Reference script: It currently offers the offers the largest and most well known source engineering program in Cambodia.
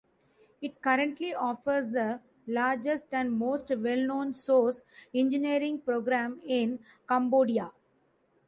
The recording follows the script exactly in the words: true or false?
false